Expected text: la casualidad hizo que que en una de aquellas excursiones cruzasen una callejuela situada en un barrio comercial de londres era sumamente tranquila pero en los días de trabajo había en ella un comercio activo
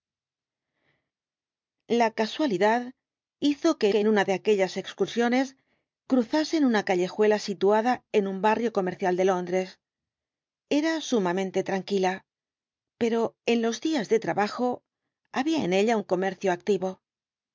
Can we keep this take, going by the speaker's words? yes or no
yes